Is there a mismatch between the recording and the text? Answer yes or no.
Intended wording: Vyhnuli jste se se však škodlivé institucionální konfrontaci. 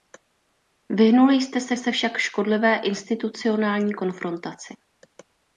no